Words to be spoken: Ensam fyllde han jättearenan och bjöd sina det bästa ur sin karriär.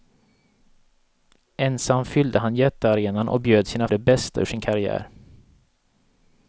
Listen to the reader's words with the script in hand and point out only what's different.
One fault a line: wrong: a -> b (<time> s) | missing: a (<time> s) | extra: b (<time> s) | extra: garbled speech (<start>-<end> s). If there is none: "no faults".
no faults